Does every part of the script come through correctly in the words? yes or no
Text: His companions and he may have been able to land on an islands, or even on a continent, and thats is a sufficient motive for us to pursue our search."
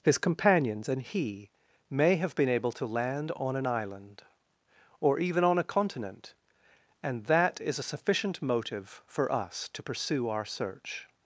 no